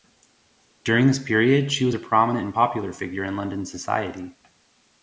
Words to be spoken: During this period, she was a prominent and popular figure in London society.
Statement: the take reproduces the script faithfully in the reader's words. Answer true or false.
true